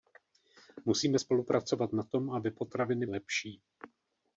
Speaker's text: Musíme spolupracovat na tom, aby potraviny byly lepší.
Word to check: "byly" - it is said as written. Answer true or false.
false